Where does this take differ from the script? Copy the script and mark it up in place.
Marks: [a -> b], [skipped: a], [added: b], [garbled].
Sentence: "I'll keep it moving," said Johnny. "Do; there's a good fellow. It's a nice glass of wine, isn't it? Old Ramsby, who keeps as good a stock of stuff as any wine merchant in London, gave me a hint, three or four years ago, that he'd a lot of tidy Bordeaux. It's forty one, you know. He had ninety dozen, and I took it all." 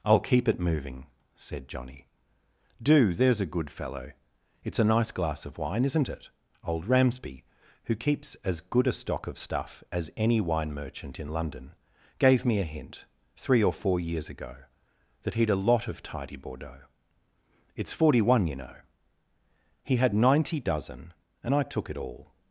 "I'll keep it moving," said Johnny. "Do; there's a good fellow. It's a nice glass of wine, isn't it? Old Ramsby, who keeps as good a stock of stuff as any wine merchant in London, gave me a hint, three or four years ago, that he'd a lot of tidy Bordeaux. It's forty one, you know. He had ninety dozen, and I took it all."